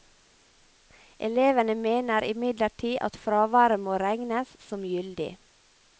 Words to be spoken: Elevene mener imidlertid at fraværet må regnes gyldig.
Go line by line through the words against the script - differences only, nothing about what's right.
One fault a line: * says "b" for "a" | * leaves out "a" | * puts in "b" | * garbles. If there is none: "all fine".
* puts in "som"